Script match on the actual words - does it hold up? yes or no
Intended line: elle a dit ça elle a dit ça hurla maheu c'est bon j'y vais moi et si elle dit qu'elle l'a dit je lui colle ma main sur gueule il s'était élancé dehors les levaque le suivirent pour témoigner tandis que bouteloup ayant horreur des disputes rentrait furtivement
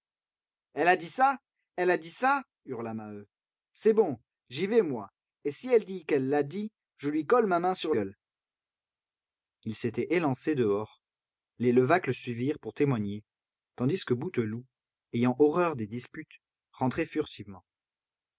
yes